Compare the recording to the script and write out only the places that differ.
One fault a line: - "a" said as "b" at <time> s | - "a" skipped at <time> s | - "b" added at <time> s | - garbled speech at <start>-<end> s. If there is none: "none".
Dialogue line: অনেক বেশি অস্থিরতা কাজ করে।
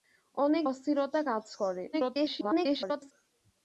- "বেশি" skipped at 0.7 s
- garbled speech at 1.9-3.1 s